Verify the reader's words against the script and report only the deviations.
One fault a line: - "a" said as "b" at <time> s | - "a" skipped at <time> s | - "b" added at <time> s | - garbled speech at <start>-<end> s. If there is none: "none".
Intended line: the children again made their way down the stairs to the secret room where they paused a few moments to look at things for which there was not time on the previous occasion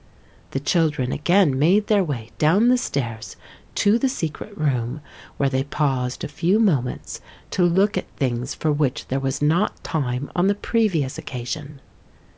none